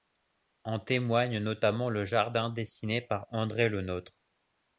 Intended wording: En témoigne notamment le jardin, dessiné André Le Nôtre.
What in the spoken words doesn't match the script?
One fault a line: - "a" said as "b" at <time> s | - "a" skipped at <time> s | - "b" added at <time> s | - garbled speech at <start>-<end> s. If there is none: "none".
- "par" added at 3.0 s